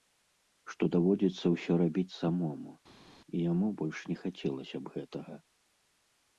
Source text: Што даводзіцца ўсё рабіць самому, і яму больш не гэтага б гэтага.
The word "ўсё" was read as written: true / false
true